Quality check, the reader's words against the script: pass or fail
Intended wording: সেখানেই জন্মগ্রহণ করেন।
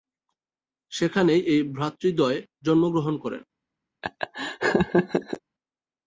fail